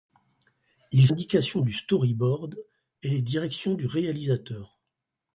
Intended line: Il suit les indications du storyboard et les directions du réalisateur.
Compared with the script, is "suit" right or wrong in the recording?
wrong